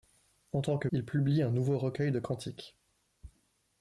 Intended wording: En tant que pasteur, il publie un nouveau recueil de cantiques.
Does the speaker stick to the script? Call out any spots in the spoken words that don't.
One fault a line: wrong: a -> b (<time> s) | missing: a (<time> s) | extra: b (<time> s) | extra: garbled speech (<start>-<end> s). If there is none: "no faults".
missing: pasteur (0.9 s)